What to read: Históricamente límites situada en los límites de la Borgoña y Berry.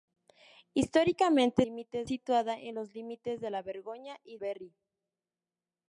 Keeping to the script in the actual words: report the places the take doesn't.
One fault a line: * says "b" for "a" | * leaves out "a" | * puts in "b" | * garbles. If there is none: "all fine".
all fine